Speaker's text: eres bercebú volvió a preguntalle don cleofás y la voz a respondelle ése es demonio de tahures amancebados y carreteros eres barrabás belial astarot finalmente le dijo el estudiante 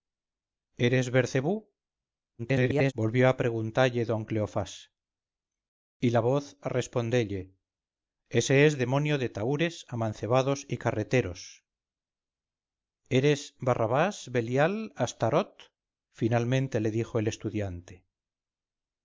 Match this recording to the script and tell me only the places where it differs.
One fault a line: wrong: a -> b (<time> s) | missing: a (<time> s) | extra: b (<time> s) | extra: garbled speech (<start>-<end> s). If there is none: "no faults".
extra: garbled speech (2.4-2.9 s)